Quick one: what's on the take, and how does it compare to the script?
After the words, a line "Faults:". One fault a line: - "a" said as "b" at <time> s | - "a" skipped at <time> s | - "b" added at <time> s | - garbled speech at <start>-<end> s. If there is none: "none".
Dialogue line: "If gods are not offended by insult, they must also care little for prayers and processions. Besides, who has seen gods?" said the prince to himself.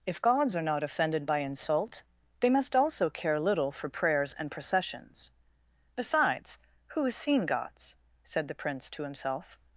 "If gods are not offended by insult, they must also care little for prayers and processions. Besides, who has seen gods?" said the prince to himself.
Faults:
none